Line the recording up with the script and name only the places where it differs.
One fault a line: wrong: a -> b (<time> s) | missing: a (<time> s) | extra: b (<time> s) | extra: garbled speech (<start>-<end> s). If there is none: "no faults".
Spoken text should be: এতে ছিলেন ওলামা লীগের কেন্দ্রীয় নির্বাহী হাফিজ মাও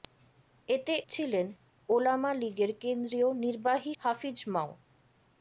no faults